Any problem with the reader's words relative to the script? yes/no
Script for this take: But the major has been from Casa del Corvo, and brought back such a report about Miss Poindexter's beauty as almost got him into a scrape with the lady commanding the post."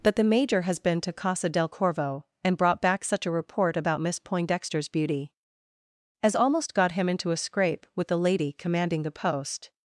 yes